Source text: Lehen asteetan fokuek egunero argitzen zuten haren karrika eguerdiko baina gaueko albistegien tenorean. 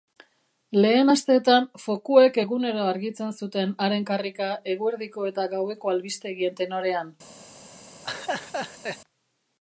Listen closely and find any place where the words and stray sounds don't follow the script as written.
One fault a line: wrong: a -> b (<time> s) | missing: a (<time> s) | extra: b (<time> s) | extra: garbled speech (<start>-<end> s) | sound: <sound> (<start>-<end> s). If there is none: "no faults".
wrong: baina -> eta (5.3 s)
sound: laugh (8.0-9.0 s)